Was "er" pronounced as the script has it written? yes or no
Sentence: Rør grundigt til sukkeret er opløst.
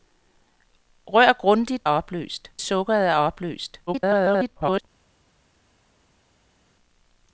yes